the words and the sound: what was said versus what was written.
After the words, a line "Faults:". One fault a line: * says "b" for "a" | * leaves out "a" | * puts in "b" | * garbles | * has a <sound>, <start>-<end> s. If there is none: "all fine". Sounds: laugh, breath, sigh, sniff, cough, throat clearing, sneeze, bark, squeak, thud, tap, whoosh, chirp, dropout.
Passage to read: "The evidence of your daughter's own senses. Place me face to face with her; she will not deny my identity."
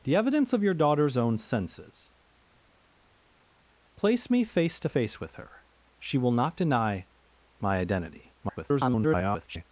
"The evidence of your daughter's own senses. Place me face to face with her; she will not deny my identity." [garbled]
Faults:
* garbles